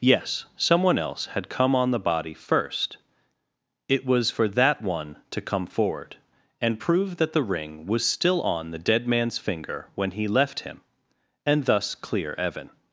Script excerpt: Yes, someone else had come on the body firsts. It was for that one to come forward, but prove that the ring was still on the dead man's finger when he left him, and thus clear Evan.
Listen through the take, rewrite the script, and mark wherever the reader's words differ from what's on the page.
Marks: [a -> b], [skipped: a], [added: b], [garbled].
Yes, someone else had come on the body [firsts. -> first] It was for that one to come forward, [but -> and] prove that the ring was still on the dead man's finger when he left him, and thus clear Evan.